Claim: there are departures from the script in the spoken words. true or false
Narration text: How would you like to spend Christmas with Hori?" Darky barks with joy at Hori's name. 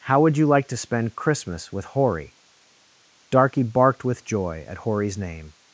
true